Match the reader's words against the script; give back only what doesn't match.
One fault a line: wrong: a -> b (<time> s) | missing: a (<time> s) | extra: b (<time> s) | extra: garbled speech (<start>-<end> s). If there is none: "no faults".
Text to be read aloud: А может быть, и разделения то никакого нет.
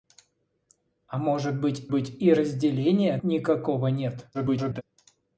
extra: быть (1.9 s)
missing: то (3.2 s)
extra: garbled speech (4.3-4.8 s)